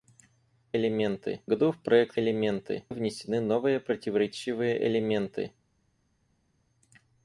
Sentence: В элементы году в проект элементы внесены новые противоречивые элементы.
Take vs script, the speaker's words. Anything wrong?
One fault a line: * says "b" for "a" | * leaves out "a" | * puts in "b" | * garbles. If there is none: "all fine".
all fine